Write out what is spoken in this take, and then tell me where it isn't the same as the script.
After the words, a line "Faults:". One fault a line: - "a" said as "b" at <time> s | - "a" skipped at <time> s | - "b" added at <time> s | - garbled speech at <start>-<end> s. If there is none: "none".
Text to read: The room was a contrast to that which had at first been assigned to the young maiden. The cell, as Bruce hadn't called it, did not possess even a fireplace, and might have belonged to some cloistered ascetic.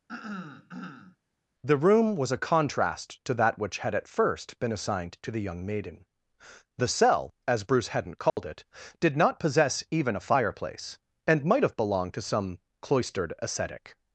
The room was a contrast to that which had at first been assigned to the young maiden. The cell, as Bruce hadn't called it, did not possess even a fireplace, and might have belonged to some cloistered ascetic.
Faults:
none